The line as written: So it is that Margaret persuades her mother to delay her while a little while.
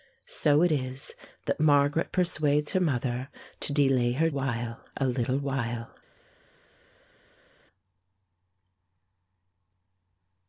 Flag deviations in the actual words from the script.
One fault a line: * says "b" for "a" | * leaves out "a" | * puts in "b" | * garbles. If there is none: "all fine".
all fine